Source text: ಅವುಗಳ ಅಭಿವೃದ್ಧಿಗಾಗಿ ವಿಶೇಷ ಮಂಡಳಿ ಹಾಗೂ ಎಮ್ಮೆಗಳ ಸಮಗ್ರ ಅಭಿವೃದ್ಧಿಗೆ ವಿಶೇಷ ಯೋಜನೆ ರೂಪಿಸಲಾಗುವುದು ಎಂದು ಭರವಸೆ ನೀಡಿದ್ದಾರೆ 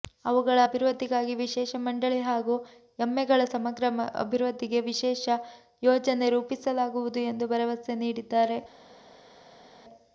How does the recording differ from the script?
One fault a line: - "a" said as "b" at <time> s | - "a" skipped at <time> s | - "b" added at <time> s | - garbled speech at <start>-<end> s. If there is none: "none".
none